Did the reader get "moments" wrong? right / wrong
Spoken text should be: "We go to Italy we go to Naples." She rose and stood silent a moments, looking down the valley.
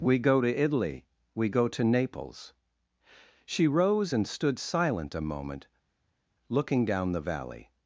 wrong